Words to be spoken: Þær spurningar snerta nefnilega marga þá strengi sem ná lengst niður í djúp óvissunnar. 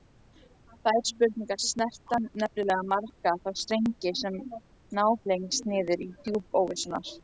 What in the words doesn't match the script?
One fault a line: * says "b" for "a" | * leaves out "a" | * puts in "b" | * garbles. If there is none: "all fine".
all fine